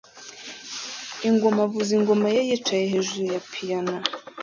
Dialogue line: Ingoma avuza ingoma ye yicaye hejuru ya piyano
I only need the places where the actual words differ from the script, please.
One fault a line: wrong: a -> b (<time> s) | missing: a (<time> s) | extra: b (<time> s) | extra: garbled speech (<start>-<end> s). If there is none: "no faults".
no faults